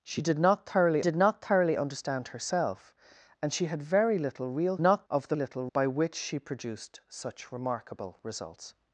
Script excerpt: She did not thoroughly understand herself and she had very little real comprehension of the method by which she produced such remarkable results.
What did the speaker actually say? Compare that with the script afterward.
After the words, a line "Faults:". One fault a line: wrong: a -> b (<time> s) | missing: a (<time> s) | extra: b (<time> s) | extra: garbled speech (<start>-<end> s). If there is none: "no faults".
She did not thoroughly did not thoroughly understand herself and she had very little real not of the little by which she produced such remarkable results.
Faults:
extra: did not thoroughly (1.0 s)
wrong: comprehension -> not (4.8 s)
wrong: method -> little (5.3 s)